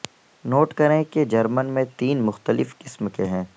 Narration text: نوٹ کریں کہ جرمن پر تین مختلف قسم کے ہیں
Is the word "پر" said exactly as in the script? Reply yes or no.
no